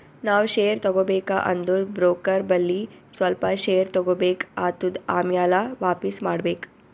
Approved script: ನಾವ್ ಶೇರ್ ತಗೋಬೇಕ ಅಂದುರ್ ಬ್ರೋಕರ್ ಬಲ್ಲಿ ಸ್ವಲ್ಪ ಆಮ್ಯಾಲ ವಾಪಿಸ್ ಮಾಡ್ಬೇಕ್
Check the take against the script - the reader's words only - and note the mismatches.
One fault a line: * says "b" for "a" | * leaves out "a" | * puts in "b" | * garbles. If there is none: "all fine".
* puts in "ಶೇರ್ ತಗೋಬೇಕ್ ಆತ್ತುದ್"